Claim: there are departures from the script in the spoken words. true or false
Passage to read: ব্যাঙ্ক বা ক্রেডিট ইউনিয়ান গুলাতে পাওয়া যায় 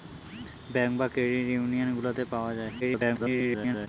true